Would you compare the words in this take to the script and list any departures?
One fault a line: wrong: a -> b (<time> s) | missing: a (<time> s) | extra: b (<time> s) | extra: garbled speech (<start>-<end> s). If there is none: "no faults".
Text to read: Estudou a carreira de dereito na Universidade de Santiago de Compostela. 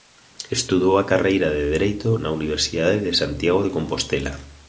no faults